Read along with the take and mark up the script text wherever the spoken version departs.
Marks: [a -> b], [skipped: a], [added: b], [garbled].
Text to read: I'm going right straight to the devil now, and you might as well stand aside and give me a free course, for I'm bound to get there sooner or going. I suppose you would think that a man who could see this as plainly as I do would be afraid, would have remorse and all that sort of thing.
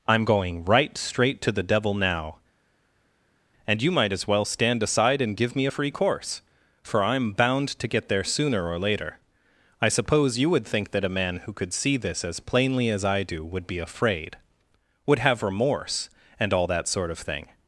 I'm going right straight to the devil now, and you might as well stand aside and give me a free course, for I'm bound to get there sooner or [going. -> later] I suppose you would think that a man who could see this as plainly as I do would be afraid, would have remorse and all that sort of thing.